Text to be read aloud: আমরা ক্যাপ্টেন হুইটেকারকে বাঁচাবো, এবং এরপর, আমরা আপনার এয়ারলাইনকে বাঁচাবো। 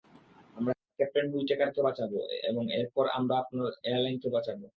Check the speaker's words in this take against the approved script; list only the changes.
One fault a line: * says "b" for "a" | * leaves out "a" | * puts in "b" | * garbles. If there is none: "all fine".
all fine